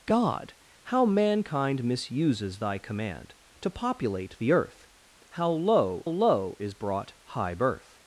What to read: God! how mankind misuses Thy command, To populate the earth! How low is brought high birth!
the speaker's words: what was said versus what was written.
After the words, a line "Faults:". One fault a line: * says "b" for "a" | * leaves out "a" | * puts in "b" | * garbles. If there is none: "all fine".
God! how mankind misuses Thy command, To populate the earth! How low low is brought high birth!
Faults:
* puts in "low"